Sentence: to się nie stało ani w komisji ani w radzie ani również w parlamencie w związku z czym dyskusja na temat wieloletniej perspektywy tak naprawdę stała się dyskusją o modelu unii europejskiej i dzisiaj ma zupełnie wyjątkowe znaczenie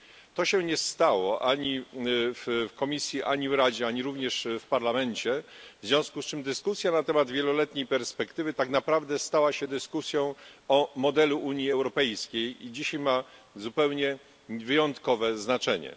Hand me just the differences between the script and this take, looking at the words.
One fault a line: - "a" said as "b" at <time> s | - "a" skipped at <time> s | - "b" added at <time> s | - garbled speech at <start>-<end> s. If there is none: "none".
none